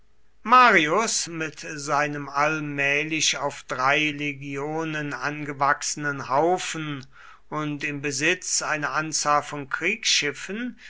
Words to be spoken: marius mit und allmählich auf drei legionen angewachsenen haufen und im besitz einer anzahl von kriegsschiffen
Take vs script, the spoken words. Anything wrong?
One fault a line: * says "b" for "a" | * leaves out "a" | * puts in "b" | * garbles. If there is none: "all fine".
* says "seinem" for "und"